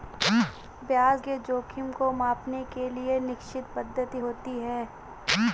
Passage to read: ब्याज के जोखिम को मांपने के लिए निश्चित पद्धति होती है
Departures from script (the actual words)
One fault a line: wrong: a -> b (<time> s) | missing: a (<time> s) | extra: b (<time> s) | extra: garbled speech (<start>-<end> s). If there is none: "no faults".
no faults